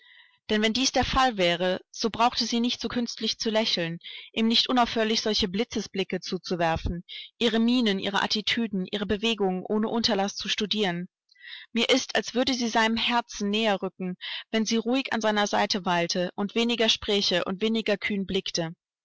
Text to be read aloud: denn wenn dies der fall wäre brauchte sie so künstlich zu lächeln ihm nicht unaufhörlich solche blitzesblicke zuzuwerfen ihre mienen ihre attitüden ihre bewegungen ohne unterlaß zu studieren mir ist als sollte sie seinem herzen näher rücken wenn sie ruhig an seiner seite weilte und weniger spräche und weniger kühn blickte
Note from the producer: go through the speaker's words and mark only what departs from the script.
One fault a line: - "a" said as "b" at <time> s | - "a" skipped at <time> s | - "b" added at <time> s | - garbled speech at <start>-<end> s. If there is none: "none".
- "so" added at 1.9 s
- "nicht" added at 2.6 s
- "sollte" said as "würde" at 12.3 s